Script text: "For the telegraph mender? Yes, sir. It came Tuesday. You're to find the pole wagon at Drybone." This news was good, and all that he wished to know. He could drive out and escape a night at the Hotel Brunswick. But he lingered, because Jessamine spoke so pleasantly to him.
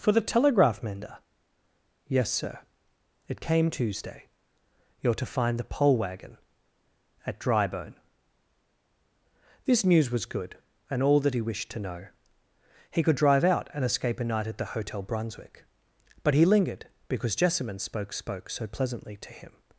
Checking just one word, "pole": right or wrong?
right